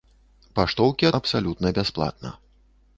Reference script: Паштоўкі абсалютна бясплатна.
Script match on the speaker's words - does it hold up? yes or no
yes